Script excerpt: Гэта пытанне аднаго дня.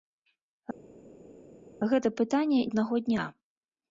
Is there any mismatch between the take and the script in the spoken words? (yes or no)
no